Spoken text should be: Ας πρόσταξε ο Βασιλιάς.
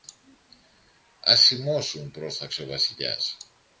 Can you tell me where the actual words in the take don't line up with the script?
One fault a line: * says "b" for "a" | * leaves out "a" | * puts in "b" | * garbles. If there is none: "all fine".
* puts in "σιμώσουν"